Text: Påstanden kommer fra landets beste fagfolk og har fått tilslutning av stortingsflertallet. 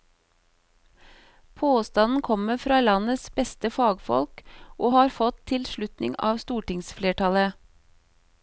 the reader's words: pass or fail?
pass